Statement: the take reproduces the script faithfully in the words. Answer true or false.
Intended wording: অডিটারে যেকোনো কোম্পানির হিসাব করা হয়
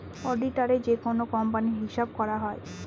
true